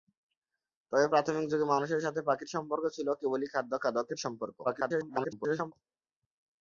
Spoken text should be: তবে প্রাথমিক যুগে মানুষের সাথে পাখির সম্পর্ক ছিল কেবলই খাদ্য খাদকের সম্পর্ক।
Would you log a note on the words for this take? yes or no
yes